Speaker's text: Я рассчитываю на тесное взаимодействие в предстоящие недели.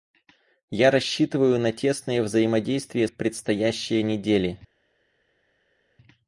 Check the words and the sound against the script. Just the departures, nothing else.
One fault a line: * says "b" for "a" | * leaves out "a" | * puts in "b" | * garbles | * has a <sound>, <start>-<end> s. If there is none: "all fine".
all fine